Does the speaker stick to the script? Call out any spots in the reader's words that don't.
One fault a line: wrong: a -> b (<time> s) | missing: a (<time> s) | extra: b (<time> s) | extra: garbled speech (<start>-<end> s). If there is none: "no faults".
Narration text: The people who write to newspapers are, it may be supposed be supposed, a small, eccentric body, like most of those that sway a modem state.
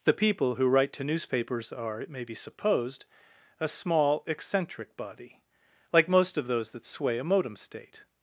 missing: be supposed (3.0 s)